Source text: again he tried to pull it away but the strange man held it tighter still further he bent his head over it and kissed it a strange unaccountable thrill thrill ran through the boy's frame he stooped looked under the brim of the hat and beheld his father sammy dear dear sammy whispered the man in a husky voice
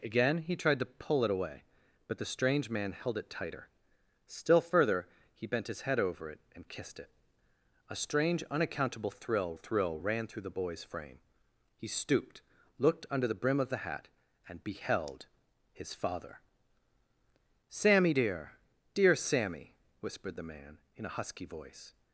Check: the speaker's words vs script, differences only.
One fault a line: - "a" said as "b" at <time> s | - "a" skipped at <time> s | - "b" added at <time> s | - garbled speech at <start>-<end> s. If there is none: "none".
none